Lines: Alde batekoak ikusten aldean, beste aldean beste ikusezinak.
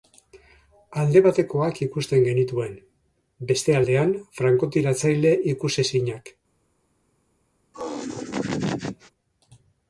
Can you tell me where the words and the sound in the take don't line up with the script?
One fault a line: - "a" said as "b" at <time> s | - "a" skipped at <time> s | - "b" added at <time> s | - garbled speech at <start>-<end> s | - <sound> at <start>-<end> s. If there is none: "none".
- "aldean" said as "genituen" at 2.3 s
- "beste" said as "frankotiratzaile" at 4.4 s
- laugh at 7.7-9.1 s